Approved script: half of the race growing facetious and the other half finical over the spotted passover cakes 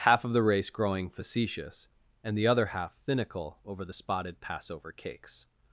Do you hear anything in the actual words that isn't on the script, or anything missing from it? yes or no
no